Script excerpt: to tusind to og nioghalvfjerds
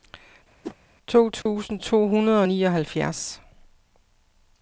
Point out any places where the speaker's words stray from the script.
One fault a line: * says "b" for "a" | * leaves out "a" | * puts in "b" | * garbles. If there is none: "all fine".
* puts in "hundrede"